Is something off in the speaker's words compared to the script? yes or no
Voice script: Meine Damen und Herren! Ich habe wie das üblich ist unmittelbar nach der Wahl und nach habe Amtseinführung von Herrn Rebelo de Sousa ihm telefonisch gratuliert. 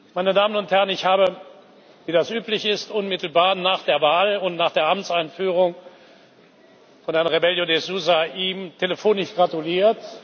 yes